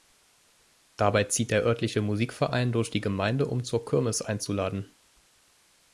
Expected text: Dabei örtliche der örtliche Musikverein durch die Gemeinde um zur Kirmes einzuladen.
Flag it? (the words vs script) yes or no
yes